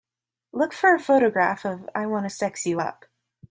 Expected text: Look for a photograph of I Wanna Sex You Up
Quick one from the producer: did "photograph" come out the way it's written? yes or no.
yes